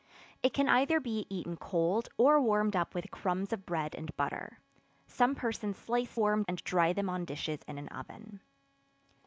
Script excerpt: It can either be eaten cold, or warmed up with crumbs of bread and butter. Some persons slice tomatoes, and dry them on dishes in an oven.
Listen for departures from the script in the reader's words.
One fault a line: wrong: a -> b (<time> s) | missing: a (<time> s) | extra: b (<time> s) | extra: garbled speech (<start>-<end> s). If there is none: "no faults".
wrong: tomatoes -> warmed (6.1 s)